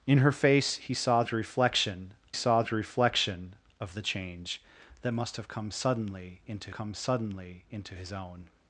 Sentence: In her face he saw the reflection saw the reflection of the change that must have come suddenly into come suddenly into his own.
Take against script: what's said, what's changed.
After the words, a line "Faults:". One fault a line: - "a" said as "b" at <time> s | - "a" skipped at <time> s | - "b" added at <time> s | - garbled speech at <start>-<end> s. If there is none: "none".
In her face he saw the reflection saw the reflection of the change that must have come suddenly into come suddenly into his own.
Faults:
none